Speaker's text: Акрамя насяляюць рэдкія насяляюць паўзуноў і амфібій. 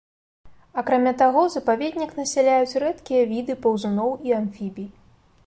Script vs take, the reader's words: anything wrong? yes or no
yes